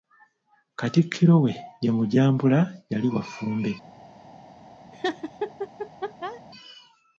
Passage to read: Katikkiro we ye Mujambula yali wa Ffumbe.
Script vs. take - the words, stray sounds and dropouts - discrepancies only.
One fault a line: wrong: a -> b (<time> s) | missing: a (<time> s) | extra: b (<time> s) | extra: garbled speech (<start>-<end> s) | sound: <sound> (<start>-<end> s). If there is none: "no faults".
sound: laugh (4.9-6.4 s)